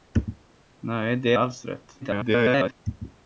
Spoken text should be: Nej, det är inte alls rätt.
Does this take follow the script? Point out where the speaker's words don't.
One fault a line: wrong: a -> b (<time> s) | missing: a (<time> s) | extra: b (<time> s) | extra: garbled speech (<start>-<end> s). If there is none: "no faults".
missing: är inte (1.3 s)
extra: garbled speech (2.0-2.7 s)